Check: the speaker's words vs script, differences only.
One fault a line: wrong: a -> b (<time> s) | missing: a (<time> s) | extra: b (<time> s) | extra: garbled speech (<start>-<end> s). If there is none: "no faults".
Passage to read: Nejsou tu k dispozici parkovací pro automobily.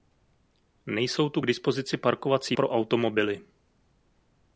no faults